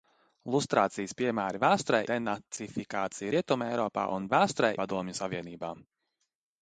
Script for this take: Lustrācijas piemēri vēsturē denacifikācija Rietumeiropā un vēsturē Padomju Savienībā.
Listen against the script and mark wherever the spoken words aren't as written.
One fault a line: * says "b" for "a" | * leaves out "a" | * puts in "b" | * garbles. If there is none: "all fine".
all fine